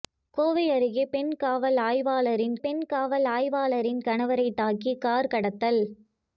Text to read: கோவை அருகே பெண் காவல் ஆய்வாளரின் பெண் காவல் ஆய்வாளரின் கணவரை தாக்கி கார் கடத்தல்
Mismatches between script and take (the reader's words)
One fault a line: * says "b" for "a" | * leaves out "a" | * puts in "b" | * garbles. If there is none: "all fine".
all fine